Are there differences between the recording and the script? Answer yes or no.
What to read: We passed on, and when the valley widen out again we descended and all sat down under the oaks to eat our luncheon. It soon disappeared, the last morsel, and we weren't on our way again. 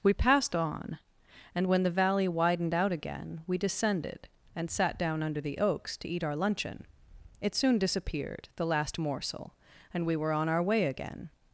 yes